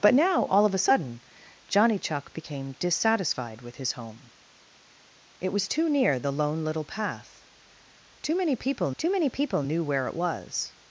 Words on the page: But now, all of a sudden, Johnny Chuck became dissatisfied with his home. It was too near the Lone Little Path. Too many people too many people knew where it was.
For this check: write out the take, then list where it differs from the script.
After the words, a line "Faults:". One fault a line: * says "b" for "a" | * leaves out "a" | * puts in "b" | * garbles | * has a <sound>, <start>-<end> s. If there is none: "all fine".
But now, all of a sudden, Johnny Chuck became dissatisfied with his home. It was too near the Lone Little Path. Too many people too many people knew where it was.
Faults:
all fine